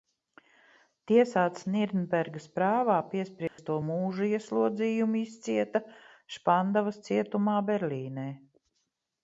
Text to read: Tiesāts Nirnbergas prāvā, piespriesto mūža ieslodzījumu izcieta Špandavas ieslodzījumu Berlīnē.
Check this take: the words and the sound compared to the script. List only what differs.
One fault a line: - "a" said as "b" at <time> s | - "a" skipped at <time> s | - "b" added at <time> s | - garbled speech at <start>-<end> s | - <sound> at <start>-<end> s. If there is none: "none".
- dropout at 3.5-3.6 s
- "ieslodzījumu" said as "cietumā" at 7.1 s